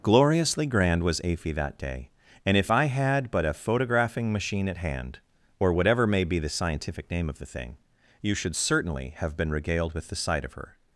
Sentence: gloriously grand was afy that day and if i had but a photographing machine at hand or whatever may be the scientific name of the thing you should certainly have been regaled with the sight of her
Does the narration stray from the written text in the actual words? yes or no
no